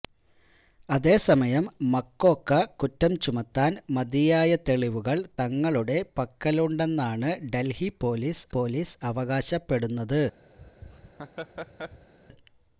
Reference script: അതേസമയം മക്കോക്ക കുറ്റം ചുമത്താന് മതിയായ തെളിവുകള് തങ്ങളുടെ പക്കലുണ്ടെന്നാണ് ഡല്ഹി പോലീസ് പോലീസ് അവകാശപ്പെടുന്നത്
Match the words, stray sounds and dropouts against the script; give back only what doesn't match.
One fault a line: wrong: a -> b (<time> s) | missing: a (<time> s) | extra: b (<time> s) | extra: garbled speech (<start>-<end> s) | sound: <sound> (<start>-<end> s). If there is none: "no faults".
sound: laugh (10.6-12.1 s)